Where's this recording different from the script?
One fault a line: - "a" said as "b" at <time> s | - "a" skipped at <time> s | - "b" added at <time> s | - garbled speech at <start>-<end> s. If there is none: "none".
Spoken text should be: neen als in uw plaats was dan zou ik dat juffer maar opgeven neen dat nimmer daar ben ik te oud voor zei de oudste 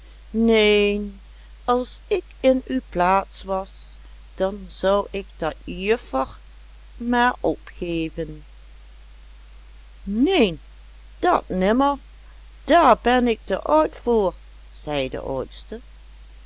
- "ik" added at 2.1 s